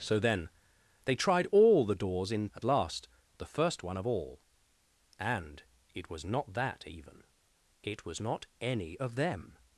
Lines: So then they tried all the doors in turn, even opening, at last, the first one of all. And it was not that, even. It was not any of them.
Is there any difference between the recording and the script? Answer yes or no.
yes